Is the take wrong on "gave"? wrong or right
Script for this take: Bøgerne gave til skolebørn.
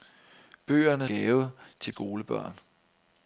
right